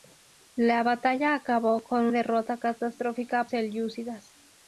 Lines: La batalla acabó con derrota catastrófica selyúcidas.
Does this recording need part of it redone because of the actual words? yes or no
no